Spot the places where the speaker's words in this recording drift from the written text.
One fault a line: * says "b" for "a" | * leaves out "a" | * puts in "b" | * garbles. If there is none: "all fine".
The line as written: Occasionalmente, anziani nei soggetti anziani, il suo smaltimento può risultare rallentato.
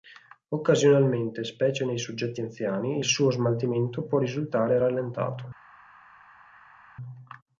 * says "specie" for "anziani"